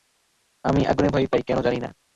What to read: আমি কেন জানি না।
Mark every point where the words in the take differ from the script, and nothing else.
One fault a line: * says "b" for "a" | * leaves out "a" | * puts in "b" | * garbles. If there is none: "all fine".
* puts in "আগুনে ভয় পাই"